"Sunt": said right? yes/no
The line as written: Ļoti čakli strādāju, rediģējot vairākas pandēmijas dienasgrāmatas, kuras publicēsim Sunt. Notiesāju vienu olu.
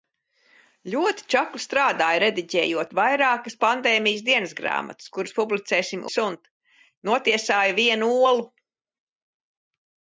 yes